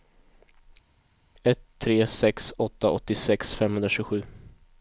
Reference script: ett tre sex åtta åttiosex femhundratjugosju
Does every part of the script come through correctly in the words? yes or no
yes